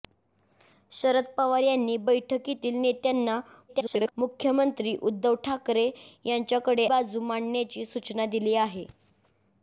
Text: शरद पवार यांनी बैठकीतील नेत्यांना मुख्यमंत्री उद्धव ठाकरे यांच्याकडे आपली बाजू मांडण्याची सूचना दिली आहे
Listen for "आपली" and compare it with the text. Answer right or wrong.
wrong